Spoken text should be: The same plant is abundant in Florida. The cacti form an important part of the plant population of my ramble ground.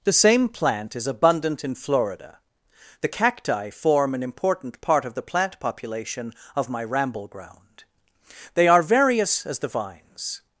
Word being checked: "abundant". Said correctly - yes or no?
yes